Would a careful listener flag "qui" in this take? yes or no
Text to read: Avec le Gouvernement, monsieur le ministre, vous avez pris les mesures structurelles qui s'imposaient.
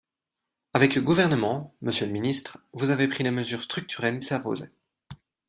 yes